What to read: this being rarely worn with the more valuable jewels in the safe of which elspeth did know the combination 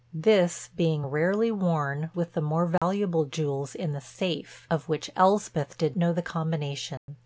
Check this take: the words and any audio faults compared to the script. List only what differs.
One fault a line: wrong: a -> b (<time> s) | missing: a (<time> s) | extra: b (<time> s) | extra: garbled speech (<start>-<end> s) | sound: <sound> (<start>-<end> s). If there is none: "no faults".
sound: dropout (2.8-2.8 s)
sound: dropout (7.0-7.1 s)